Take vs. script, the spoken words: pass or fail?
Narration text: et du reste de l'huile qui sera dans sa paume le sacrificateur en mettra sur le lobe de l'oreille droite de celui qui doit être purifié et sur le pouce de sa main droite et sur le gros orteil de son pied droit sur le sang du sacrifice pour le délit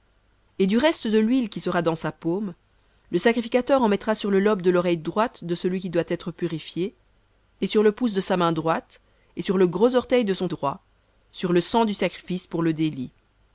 fail